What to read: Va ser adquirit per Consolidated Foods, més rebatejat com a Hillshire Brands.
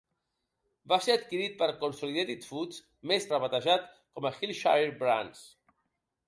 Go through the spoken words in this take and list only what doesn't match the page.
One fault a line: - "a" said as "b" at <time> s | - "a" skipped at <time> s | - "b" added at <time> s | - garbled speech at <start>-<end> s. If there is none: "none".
none